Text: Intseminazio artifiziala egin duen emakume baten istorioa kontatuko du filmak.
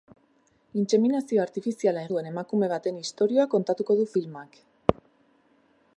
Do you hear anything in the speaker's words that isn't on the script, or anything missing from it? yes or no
yes